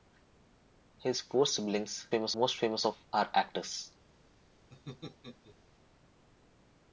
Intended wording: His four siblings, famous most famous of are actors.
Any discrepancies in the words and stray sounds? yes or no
yes